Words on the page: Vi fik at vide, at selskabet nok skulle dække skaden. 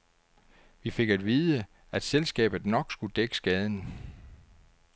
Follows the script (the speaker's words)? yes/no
yes